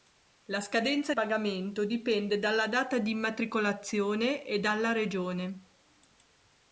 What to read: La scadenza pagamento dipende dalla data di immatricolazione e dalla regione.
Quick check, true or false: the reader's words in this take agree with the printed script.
true